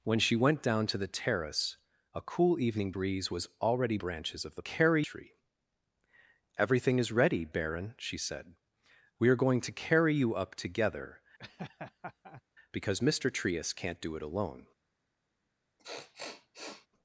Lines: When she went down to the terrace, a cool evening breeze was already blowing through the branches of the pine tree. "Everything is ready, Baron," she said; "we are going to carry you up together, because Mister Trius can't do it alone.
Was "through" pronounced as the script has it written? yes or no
no